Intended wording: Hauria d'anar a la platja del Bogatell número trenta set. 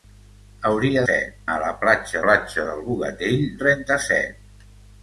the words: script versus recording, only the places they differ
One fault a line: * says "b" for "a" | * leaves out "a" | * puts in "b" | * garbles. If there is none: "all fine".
* says "set" for "d'anar"
* puts in "platja"
* leaves out "número"